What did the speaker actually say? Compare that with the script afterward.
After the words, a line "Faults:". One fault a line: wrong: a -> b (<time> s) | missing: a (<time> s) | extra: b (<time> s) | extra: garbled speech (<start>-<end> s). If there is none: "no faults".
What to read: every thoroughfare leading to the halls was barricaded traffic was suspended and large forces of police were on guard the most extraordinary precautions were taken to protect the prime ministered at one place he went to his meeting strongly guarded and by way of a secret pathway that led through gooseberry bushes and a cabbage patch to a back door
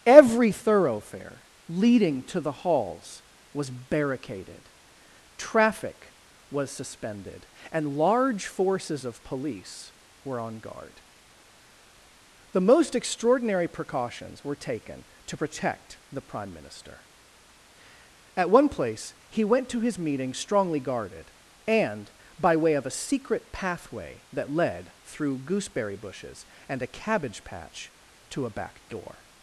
every thoroughfare leading to the halls was barricaded traffic was suspended and large forces of police were on guard the most extraordinary precautions were taken to protect the prime minister at one place he went to his meeting strongly guarded and by way of a secret pathway that led through gooseberry bushes and a cabbage patch to a back door
Faults:
wrong: ministered -> minister (16.5 s)